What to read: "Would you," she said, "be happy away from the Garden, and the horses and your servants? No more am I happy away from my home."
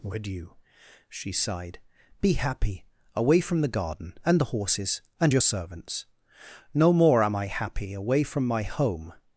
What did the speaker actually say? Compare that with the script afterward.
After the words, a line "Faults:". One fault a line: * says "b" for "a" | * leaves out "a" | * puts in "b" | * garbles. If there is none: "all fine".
"Would you," she sighed, "be happy away from the Garden, and the horses and your servants? No more am I happy away from my home."
Faults:
* says "sighed" for "said"